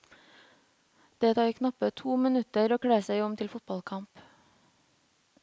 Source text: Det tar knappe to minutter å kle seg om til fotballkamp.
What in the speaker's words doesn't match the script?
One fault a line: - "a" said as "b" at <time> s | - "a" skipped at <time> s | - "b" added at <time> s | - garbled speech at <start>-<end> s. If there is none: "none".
none